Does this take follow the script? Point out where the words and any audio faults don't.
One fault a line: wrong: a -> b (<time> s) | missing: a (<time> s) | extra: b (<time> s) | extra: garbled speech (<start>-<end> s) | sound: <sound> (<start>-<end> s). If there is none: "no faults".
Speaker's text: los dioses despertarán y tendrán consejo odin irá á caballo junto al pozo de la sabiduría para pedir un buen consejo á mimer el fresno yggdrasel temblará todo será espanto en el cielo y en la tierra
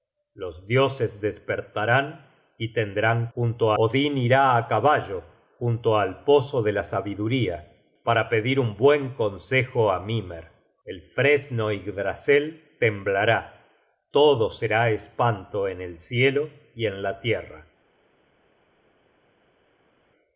wrong: consejo -> junto (3.3 s)